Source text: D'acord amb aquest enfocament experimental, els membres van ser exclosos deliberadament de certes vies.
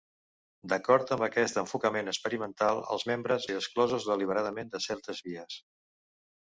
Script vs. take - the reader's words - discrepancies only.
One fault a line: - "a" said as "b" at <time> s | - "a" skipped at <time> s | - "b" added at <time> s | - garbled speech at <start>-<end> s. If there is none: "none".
- "van" skipped at 3.5 s